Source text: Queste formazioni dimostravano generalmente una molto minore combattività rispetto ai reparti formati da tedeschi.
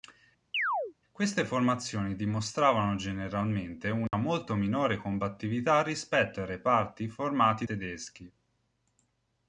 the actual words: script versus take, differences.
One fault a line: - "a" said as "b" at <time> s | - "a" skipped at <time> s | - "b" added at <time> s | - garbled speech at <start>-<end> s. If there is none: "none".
- "da" skipped at 7.6 s